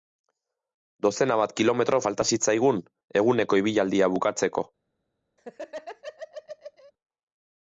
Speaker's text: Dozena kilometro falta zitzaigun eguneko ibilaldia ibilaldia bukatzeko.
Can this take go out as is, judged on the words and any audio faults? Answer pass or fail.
fail